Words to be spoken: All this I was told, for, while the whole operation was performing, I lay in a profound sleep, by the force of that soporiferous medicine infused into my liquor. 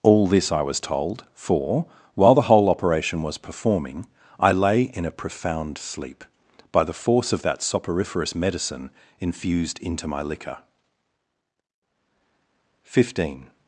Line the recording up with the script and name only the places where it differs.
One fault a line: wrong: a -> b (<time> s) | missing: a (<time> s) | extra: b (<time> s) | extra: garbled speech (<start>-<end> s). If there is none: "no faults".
extra: Fifteen (12.8 s)